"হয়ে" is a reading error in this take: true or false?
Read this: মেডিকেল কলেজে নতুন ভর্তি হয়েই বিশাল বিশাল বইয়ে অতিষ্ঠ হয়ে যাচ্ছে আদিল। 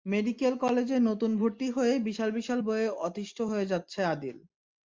false